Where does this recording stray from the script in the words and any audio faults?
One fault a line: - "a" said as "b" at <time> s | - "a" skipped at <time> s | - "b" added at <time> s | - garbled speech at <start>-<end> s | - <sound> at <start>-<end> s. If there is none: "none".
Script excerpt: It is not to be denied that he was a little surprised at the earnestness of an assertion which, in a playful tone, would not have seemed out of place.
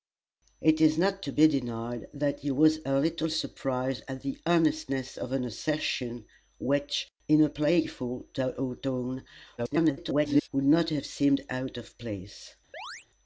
- garbled speech at 9.6-10.5 s
- chirp at 12.7-13.1 s